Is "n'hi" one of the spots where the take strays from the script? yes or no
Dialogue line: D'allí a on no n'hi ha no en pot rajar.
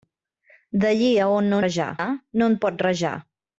yes